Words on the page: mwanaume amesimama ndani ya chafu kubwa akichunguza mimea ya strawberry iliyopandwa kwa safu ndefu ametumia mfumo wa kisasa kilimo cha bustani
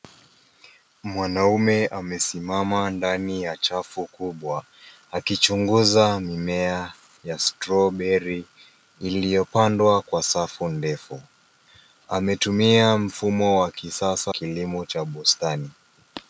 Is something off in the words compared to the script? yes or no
no